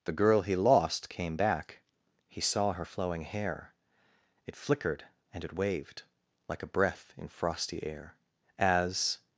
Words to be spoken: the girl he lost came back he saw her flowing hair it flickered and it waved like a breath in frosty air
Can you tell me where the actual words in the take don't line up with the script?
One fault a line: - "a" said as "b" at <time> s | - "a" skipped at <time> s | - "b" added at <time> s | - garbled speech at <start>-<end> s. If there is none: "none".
- "as" added at 8.6 s